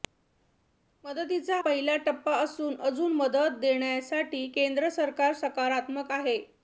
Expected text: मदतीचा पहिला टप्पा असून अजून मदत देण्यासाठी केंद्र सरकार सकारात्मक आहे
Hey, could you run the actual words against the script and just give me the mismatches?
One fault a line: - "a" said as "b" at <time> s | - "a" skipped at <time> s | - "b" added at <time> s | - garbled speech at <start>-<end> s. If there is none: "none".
none